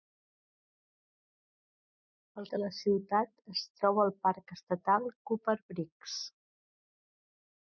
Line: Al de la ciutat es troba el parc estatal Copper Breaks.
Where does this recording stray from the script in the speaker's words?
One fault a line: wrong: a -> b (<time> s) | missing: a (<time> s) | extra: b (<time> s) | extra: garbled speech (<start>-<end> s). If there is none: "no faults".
no faults